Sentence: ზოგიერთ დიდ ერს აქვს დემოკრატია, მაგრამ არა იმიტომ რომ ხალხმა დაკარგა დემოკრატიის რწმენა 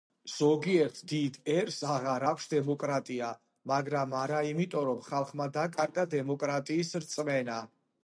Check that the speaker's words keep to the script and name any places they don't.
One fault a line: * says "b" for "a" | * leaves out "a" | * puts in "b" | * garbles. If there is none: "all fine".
* puts in "აღარ"